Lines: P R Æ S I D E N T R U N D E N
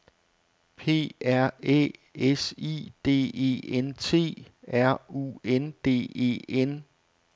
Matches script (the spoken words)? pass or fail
pass